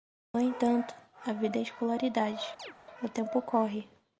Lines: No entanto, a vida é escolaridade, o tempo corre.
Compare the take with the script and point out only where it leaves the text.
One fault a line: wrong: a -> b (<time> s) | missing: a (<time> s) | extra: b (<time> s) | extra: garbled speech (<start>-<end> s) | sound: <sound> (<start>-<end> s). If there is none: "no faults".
sound: chirp (2.6-2.7 s)